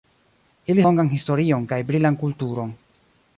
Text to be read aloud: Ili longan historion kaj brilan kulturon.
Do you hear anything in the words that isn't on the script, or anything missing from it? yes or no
no